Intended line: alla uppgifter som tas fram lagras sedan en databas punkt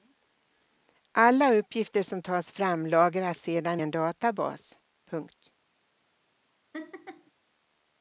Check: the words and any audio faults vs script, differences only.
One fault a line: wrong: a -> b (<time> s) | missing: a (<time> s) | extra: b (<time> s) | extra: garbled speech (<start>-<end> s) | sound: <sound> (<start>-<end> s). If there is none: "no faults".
sound: laugh (6.7-7.3 s)